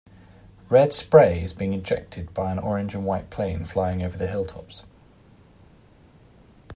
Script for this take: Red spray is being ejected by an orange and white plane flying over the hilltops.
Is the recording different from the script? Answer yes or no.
no